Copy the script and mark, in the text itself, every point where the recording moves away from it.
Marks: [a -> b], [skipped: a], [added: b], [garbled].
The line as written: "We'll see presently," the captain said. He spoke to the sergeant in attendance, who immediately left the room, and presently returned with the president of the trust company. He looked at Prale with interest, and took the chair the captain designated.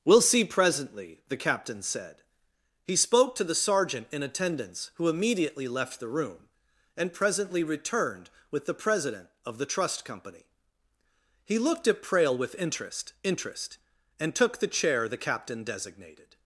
"We'll see presently," the captain said. He spoke to the sergeant in attendance, who immediately left the room, and presently returned with the president of the trust company. He looked at Prale with interest, [added: interest] and took the chair the captain designated.